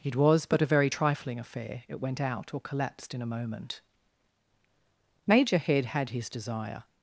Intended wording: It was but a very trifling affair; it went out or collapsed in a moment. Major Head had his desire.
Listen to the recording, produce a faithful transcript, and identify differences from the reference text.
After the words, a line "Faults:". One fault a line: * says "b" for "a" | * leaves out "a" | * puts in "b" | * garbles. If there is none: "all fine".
It was but a very trifling affair; it went out or collapsed in a moment. Major Head had his desire.
Faults:
all fine